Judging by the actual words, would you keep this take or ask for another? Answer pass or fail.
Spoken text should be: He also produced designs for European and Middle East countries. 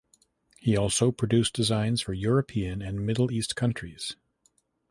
pass